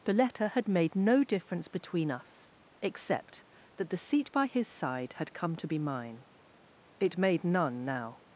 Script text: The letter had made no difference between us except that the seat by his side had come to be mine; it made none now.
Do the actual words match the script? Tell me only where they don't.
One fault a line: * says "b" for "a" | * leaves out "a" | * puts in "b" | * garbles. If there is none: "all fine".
all fine